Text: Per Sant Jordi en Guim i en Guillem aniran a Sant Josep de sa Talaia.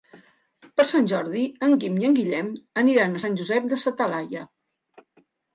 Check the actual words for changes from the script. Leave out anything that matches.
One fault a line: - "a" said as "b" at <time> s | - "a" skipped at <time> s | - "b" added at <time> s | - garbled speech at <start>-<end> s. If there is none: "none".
none